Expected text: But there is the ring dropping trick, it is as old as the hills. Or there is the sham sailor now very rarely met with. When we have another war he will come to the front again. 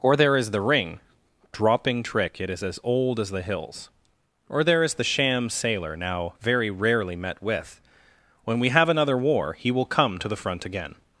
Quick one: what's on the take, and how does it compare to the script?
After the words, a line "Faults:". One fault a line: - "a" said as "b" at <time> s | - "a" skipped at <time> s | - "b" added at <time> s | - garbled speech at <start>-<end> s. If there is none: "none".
Or there is the ring dropping trick, it is as old as the hills. Or there is the sham sailor now very rarely met with. When we have another war he will come to the front again.
Faults:
- "But" said as "Or" at 0.0 s